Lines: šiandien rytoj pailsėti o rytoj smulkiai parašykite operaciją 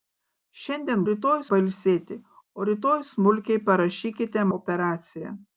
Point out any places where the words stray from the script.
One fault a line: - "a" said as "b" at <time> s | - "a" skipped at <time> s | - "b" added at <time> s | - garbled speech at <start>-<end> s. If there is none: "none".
none